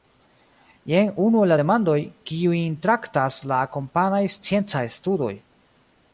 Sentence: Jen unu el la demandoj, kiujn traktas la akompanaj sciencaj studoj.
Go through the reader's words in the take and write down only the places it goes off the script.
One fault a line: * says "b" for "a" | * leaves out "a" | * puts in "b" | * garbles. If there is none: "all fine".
all fine